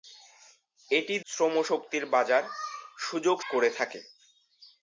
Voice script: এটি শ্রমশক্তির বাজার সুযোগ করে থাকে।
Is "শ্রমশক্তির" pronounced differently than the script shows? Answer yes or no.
no